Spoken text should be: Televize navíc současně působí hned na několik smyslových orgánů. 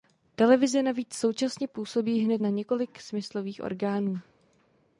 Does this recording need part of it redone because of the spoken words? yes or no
no